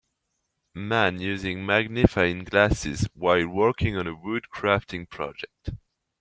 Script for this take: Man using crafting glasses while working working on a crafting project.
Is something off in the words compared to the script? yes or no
yes